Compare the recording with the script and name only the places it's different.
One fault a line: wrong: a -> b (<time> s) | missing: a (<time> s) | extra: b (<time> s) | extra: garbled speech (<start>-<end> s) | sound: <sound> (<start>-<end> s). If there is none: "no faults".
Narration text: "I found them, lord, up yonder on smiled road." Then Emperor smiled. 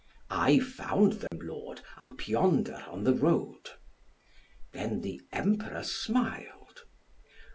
sound: dropout (1.3-1.3 s)
sound: dropout (2.0-2.1 s)
wrong: smiled -> the (3.0 s)
extra: the (5.0 s)